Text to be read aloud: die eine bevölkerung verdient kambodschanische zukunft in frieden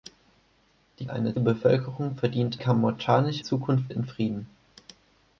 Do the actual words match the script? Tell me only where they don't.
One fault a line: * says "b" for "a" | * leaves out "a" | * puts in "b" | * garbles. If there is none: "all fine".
all fine